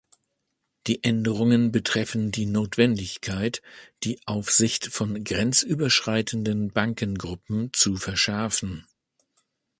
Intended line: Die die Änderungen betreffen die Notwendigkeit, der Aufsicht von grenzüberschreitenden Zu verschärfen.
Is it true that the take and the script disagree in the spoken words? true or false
true